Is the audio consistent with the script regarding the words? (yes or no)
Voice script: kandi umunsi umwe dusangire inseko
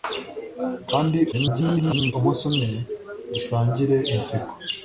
no